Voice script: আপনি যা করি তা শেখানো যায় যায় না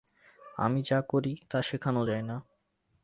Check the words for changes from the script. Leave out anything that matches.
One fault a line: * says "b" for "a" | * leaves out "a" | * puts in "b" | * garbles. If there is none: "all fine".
* says "আমি" for "আপনি"
* leaves out "যায়"